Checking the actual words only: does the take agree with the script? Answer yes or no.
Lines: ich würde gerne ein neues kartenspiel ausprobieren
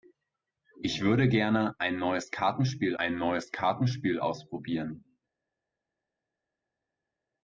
no